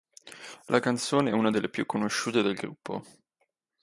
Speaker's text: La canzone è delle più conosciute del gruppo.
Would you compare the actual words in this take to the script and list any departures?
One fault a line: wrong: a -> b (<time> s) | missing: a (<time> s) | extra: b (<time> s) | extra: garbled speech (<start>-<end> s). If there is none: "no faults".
extra: una (1.3 s)